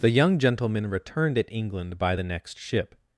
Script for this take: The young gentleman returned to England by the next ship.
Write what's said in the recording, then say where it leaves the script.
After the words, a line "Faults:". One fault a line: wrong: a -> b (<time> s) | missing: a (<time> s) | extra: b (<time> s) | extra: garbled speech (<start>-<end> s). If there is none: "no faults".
The young gentleman returned at England by the next ship.
Faults:
wrong: to -> at (1.4 s)